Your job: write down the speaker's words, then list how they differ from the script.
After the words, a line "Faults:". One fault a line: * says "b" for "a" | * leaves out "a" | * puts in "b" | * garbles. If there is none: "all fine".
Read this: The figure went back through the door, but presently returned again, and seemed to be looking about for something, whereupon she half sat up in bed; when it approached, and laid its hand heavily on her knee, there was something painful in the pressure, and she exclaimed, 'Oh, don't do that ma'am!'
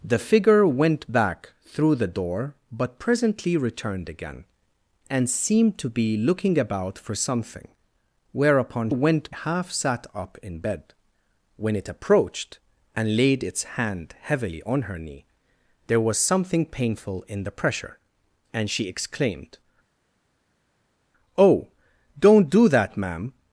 The figure went back through the door, but presently returned again, and seemed to be looking about for something, whereupon went half sat up in bed; when it approached, and laid its hand heavily on her knee, there was something painful in the pressure, and she exclaimed, 'Oh, don't do that ma'am!'
Faults:
* says "went" for "she"